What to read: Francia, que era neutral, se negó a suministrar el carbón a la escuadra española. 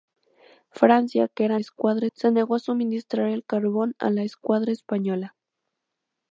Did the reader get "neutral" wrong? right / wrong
wrong